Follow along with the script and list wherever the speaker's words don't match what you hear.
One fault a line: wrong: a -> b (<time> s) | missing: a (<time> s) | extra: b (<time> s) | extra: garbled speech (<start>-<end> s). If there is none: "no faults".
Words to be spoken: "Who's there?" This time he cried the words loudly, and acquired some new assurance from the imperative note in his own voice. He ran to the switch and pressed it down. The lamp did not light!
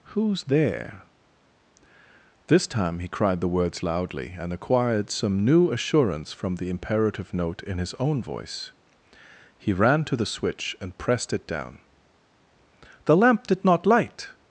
no faults